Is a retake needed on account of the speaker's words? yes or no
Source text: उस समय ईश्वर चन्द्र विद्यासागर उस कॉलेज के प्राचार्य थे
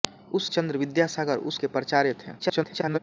yes